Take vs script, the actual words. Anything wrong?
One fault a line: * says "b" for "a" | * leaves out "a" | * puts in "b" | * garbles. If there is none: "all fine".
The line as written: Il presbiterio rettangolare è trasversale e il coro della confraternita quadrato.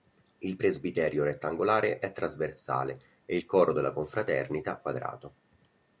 all fine